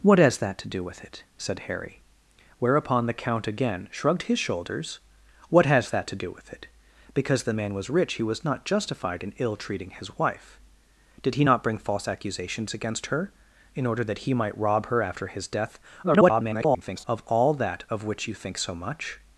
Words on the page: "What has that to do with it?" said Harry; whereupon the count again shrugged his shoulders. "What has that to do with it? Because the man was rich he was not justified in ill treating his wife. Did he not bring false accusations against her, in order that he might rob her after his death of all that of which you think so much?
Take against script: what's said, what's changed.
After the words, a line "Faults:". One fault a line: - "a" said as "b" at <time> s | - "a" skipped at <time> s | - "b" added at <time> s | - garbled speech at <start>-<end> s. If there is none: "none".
"What has that to do with it?" said Harry; whereupon the count again shrugged his shoulders. "What has that to do with it? Because the man was rich he was not justified in ill treating his wife. Did he not bring false accusations against her, in order that he might rob her after his death [garbled] of all that of which you think so much?
Faults:
- garbled speech at 16.0-17.0 s